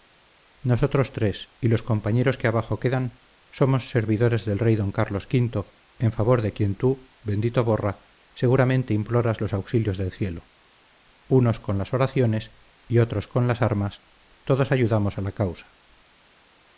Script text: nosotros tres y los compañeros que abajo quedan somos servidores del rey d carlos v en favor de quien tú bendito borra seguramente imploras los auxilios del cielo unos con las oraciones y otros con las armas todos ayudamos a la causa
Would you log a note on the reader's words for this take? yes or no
no